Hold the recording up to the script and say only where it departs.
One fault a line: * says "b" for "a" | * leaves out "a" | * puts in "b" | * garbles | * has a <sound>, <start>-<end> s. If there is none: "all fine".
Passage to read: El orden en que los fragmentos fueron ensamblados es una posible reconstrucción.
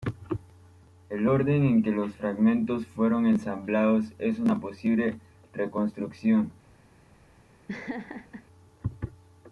* has a laugh, 7.7-8.4 s